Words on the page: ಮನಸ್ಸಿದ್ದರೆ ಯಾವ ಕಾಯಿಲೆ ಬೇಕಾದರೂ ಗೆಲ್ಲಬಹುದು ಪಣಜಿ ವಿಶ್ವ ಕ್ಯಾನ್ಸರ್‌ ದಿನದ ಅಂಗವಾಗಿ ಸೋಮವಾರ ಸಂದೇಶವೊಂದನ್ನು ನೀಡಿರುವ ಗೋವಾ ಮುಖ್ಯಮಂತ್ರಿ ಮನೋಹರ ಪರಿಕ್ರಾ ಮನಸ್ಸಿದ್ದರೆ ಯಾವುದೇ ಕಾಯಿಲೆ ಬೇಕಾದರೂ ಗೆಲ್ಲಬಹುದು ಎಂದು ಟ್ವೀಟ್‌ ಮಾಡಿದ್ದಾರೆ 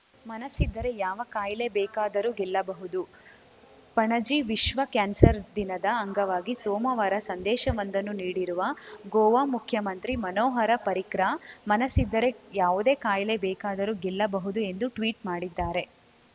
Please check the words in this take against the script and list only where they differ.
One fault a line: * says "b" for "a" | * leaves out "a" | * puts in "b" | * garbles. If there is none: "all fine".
all fine